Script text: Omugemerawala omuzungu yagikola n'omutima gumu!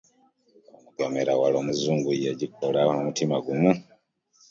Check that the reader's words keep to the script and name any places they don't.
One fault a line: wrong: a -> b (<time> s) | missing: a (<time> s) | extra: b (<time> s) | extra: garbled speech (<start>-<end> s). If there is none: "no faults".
no faults